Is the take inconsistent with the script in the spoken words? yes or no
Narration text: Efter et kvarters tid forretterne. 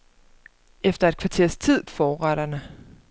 no